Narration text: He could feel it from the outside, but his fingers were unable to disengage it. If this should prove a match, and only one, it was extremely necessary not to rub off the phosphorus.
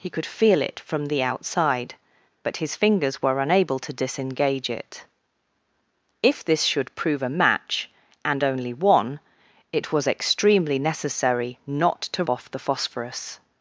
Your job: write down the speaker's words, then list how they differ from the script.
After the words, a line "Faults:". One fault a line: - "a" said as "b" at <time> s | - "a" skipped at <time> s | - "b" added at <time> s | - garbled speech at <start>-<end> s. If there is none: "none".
He could feel it from the outside, but his fingers were unable to disengage it. If this should prove a match, and only one, it was extremely necessary not to off the phosphorus.
Faults:
- "rub" skipped at 12.2 s